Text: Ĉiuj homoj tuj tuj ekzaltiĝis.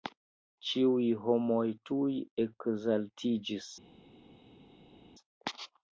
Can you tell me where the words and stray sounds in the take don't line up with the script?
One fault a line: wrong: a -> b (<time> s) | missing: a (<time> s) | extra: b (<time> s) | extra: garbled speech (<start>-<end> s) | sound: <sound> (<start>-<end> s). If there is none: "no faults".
missing: tuj (2.1 s)